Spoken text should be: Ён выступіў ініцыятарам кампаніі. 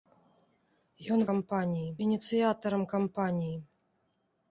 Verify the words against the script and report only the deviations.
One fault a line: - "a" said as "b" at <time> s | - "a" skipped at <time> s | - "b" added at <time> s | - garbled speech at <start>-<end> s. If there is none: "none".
- "выступіў" said as "кампаніі" at 1.3 s